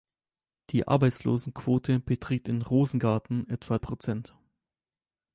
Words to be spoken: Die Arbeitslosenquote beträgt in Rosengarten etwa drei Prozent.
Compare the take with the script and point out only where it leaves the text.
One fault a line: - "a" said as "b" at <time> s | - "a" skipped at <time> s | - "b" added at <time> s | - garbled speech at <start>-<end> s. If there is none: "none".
- "drei" skipped at 3.8 s